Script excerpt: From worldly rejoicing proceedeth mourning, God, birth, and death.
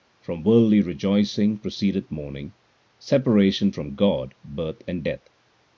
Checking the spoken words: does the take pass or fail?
fail